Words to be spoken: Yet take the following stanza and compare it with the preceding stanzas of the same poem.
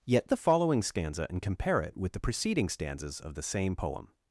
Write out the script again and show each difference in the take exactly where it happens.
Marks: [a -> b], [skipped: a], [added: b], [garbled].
Yet [skipped: take] the following stanza and compare it with the preceding stanzas of the same poem.